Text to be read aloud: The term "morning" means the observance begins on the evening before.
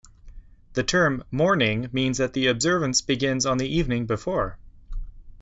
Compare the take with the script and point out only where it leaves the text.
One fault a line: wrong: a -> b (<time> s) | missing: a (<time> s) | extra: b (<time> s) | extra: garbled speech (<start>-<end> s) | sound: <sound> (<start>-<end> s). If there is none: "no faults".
extra: that (2.2 s)